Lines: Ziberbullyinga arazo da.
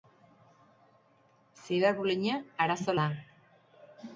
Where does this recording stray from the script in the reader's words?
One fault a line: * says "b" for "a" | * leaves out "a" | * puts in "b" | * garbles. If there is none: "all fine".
all fine